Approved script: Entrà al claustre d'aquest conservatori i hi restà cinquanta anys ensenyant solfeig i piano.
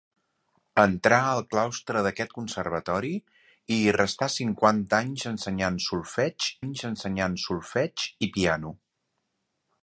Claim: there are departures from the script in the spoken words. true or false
true